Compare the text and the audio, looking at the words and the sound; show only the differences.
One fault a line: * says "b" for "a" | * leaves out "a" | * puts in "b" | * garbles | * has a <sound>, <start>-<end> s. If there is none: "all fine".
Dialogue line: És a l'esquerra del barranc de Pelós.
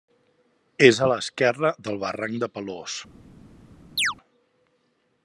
* has a chirp, 4.0-4.1 s